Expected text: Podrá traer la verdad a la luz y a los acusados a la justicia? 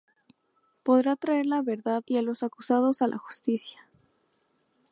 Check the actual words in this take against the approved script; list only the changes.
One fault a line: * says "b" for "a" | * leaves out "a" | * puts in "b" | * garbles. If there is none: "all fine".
* leaves out "a la luz"